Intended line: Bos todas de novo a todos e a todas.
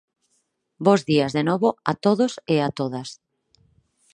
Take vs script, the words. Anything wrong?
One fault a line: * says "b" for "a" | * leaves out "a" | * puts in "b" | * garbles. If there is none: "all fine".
* says "días" for "todas"